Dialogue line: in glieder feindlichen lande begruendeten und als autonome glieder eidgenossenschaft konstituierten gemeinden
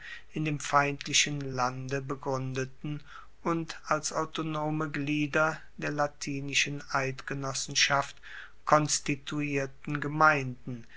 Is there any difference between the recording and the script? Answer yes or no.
yes